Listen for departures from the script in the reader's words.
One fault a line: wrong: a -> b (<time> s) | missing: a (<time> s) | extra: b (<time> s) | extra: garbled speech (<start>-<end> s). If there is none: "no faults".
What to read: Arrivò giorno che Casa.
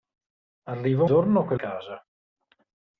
no faults